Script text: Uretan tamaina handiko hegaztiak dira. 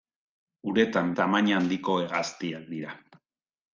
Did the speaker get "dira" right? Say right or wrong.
right